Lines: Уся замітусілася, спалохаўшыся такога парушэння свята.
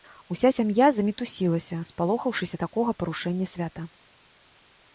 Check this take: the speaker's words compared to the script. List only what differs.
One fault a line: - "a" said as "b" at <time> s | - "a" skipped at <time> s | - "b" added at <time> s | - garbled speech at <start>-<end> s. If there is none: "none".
- "сям'я" added at 0.6 s